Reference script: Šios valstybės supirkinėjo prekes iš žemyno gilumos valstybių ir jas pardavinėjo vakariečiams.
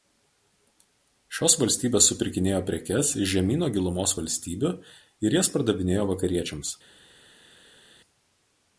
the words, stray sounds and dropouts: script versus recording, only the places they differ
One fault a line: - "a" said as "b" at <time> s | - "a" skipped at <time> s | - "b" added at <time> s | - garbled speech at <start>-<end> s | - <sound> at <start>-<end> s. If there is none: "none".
none